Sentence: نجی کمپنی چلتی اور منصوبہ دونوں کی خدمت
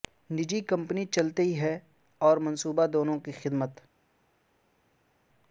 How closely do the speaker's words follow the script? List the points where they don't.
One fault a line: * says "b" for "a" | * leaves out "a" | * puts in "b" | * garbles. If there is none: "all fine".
* puts in "ہے"